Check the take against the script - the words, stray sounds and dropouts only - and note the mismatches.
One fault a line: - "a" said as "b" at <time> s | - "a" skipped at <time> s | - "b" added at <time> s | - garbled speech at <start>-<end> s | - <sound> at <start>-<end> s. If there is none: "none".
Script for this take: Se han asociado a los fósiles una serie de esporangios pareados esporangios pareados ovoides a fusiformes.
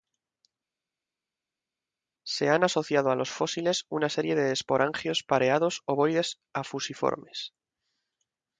- "esporangios pareados" skipped at 5.8 s